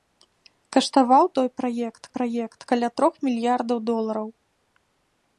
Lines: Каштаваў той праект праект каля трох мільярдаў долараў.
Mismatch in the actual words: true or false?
false